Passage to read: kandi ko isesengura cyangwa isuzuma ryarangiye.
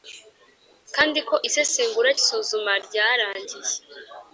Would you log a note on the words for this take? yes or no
yes